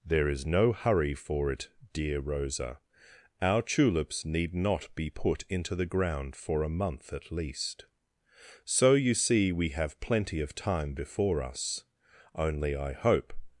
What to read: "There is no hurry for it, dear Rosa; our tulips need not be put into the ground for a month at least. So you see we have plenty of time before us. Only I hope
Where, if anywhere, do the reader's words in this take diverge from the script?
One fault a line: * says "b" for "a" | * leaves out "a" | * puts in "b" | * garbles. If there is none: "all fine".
all fine